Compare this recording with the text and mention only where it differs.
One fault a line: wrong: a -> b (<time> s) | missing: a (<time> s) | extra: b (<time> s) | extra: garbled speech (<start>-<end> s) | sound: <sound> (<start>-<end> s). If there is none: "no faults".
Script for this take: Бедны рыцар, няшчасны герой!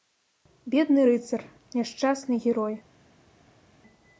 no faults